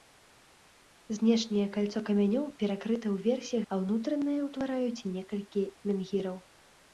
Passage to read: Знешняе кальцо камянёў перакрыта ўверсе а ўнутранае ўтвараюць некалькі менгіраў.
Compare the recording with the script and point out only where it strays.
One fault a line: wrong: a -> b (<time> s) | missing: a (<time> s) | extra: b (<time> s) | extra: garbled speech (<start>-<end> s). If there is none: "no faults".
no faults